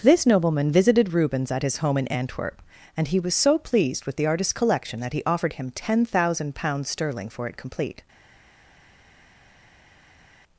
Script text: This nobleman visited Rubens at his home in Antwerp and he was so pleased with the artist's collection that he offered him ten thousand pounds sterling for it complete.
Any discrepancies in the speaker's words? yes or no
no